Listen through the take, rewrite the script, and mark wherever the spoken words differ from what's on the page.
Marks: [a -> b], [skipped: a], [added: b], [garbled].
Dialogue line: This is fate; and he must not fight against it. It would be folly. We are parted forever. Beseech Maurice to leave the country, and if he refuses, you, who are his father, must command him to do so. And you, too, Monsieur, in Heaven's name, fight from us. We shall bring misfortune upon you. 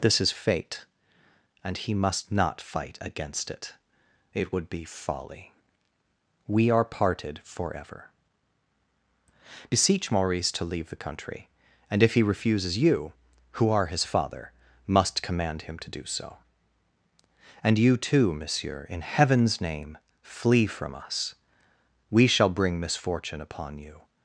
This is fate; and he must not fight against it. It would be folly. We are parted forever. Beseech Maurice to leave the country, and if he refuses, you, who are his father, must command him to do so. And you, too, Monsieur, in Heaven's name, [fight -> flee] from us. We shall bring misfortune upon you.